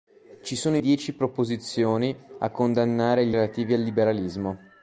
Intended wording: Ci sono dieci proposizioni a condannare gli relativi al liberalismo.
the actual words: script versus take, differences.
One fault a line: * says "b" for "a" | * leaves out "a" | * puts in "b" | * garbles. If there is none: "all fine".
all fine